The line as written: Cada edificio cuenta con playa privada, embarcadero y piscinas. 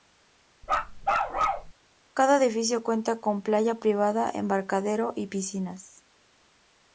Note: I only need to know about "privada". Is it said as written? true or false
true